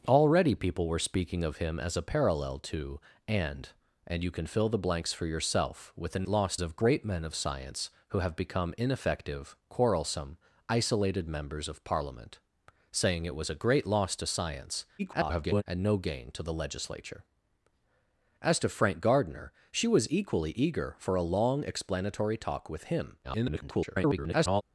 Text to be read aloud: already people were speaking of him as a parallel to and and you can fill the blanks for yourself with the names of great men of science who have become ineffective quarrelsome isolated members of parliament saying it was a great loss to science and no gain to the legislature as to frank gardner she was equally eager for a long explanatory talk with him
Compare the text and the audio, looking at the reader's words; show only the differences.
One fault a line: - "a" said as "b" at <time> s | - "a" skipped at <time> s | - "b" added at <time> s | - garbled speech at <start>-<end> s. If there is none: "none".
- "names" said as "loss" at 6.3 s
- garbled speech at 15.0-15.6 s
- garbled speech at 23.2-24.6 s